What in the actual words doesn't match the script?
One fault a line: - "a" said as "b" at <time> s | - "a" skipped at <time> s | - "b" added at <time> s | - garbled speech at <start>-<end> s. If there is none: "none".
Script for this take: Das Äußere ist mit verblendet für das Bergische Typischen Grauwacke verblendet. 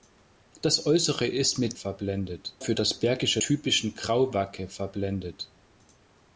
none